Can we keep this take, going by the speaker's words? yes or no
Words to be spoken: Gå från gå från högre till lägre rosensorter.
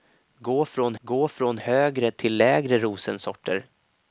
yes